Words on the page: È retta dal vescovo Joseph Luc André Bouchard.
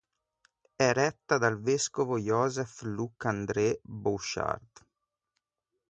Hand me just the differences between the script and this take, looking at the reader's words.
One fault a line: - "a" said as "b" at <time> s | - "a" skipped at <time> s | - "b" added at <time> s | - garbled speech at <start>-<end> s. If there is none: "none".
none